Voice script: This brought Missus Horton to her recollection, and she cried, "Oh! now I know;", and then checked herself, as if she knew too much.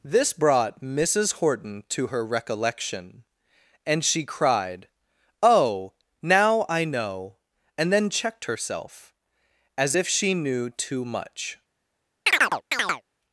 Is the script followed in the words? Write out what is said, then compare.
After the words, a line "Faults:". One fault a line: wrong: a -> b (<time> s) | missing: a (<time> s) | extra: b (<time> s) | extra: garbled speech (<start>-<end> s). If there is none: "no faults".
This brought Missus Horton to her recollection, and she cried, "Oh! now I know;", and then checked herself, as if she knew too much.
Faults:
no faults